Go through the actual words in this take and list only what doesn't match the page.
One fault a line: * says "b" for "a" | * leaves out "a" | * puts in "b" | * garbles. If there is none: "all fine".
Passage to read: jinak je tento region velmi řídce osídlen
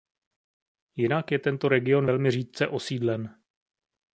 all fine